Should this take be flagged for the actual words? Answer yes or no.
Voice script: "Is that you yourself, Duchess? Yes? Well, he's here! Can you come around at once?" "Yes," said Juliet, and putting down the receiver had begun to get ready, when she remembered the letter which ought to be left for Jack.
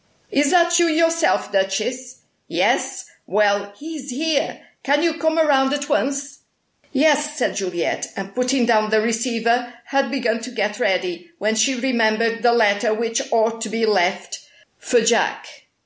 no